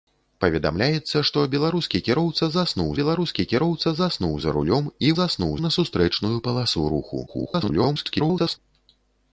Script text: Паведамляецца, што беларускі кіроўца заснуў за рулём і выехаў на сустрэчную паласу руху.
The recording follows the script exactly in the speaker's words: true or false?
false